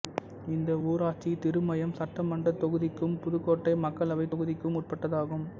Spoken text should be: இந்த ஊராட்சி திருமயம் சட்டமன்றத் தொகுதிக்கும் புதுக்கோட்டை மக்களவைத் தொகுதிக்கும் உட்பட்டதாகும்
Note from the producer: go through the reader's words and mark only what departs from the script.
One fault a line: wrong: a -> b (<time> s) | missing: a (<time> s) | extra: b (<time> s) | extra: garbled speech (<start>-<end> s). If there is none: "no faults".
no faults